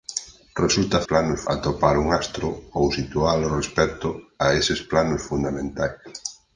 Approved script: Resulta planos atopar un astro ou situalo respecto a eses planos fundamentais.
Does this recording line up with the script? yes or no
yes